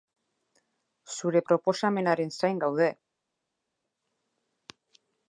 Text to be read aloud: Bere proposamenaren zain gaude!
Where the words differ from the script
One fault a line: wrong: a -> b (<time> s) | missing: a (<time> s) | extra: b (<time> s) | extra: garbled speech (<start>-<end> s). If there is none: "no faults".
wrong: Bere -> Zure (1.2 s)